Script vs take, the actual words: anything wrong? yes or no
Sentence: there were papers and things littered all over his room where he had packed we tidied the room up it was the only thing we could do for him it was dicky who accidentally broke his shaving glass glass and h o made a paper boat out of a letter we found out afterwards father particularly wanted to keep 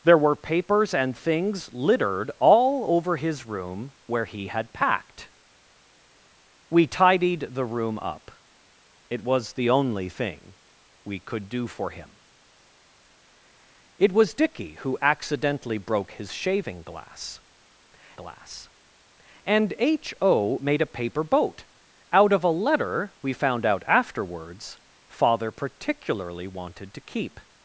no